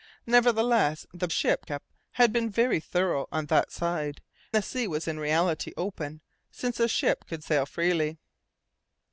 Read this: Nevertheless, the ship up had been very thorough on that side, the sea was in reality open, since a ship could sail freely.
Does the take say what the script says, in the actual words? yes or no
yes